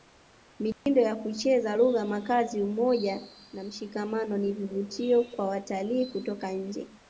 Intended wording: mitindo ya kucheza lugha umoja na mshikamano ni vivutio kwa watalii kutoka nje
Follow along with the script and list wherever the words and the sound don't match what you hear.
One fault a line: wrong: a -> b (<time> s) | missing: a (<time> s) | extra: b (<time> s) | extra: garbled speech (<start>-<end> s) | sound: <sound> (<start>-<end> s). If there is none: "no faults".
sound: dropout (0.7-0.9 s)
extra: makazi (2.0 s)